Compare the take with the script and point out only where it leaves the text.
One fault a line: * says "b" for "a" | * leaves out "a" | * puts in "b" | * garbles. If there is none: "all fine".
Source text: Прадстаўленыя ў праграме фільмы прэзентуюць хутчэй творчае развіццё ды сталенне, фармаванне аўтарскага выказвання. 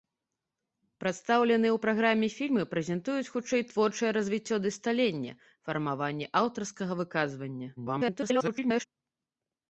* garbles